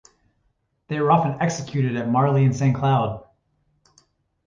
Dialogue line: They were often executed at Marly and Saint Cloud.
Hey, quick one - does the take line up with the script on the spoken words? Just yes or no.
yes